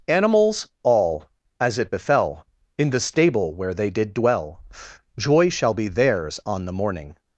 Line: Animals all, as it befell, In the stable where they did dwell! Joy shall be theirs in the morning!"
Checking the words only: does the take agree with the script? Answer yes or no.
no